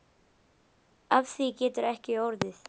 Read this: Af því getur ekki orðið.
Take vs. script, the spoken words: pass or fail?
pass